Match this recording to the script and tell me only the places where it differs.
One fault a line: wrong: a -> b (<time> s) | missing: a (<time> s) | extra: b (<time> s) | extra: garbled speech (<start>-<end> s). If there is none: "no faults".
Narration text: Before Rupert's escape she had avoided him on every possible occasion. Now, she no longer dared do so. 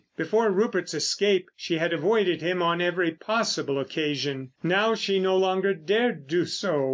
no faults